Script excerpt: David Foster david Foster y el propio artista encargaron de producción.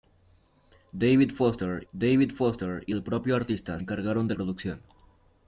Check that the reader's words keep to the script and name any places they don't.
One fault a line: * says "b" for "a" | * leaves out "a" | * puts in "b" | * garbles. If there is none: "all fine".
all fine